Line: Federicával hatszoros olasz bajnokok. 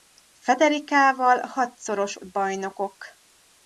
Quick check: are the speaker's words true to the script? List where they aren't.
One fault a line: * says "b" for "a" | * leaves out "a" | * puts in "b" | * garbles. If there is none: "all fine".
* leaves out "olasz"